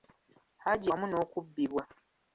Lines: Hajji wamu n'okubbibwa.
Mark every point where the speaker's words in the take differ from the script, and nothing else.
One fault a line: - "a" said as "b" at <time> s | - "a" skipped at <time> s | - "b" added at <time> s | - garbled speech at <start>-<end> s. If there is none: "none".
none